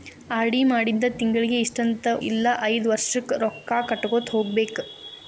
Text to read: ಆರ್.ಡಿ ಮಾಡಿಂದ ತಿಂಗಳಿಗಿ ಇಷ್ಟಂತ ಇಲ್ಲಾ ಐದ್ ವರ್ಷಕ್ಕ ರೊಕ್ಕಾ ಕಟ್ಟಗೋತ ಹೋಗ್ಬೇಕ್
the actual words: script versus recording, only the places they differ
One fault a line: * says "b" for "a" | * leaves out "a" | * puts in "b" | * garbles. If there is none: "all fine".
all fine